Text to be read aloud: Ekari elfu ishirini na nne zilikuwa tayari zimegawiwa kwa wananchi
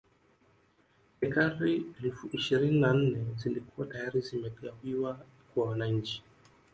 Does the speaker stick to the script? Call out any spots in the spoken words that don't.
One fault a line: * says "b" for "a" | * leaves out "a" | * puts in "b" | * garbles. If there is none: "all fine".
all fine